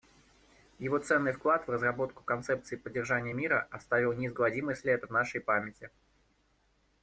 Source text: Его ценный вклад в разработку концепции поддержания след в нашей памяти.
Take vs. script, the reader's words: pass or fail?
fail